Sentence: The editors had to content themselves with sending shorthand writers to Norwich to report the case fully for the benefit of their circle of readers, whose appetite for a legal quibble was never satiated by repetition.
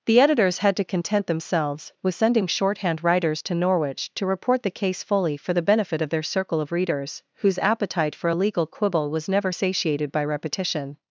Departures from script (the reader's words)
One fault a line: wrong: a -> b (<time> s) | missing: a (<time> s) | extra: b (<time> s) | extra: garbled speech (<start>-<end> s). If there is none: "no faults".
no faults